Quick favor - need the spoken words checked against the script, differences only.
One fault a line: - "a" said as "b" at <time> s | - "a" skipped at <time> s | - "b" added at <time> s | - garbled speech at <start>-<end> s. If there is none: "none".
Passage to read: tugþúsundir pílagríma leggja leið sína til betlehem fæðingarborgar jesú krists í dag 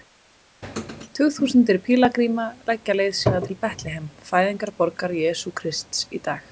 none